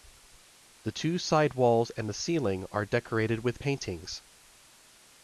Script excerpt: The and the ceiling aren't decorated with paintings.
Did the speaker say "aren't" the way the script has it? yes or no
no